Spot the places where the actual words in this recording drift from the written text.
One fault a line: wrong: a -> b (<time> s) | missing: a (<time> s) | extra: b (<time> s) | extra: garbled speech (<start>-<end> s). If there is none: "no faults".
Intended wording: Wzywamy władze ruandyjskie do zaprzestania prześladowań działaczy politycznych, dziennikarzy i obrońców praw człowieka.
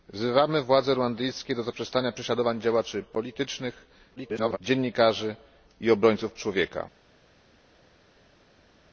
extra: garbled speech (4.2-4.6 s)
missing: praw (6.3 s)